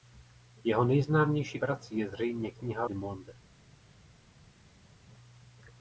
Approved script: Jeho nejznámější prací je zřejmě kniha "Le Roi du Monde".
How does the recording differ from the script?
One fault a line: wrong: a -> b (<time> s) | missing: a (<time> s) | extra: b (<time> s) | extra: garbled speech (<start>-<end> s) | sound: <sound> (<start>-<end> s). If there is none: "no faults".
missing: Le Roi (2.8 s)